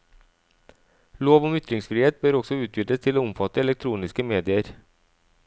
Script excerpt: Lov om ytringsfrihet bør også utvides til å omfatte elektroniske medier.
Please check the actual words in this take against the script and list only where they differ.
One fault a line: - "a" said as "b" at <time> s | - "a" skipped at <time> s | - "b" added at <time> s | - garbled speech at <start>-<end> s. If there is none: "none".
none